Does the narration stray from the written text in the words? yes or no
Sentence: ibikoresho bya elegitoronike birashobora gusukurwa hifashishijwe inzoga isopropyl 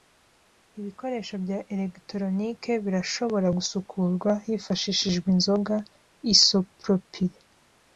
no